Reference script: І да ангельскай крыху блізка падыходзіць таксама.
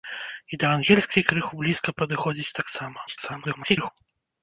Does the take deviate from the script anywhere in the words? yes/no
yes